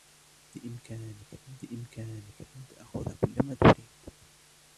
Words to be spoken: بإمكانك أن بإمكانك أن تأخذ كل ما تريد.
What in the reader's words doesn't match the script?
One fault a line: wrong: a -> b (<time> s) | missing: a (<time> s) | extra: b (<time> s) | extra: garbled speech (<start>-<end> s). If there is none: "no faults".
no faults